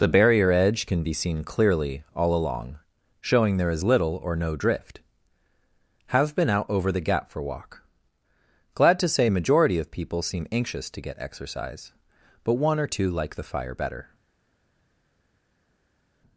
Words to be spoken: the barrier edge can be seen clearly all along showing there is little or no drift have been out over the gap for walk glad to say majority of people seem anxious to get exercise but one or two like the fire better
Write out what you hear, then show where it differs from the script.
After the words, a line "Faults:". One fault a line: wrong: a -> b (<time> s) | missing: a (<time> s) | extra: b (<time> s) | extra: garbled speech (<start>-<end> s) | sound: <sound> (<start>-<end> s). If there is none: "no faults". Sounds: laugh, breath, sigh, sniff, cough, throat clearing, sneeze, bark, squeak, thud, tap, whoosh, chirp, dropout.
the barrier edge can be seen clearly all along showing there is little or no drift have been out over the gap for walk glad to say majority of people seem anxious to get exercise but one or two like the fire better
Faults:
no faults